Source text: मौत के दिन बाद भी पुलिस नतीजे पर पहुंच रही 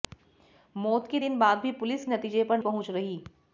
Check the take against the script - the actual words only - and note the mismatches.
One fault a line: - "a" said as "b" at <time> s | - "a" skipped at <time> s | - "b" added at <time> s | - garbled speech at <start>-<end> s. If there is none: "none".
none